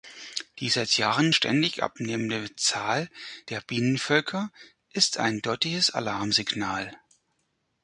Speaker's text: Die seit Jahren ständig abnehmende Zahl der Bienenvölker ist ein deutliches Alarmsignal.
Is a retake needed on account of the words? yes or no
no